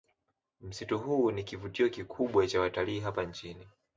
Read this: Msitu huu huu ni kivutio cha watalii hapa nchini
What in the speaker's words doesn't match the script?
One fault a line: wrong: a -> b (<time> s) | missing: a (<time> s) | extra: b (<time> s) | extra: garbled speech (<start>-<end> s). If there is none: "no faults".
missing: huu (1.3 s)
extra: kikubwa (1.9 s)